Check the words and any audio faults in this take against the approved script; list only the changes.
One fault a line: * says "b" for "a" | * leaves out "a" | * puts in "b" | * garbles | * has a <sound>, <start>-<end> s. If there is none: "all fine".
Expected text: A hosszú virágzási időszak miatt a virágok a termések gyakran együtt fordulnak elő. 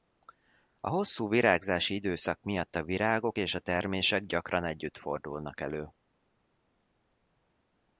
* puts in "és"